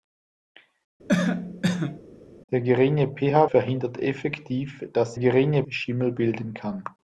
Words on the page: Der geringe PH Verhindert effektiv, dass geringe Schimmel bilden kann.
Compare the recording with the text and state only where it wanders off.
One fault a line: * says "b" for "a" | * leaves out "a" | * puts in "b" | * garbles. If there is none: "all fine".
all fine